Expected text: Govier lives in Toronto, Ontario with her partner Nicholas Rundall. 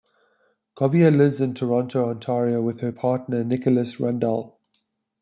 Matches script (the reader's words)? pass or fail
pass